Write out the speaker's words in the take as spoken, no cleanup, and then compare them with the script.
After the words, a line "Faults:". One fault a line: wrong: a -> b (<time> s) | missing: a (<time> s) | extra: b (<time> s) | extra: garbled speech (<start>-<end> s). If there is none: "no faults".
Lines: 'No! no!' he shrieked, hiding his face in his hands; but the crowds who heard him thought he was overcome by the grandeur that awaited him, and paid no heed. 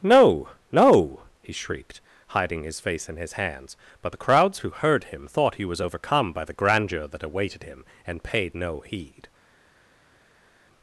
'No! no!' he shrieked, hiding his face in his hands; but the crowds who heard him thought he was overcome by the grandeur that awaited him, and paid no heed.
Faults:
no faults